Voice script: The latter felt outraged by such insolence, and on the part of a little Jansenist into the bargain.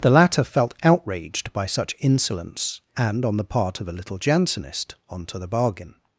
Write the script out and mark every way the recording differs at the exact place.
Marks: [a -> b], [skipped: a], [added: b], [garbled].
The latter felt outraged by such insolence, and on the part of a little Jansenist [into -> onto] the bargain.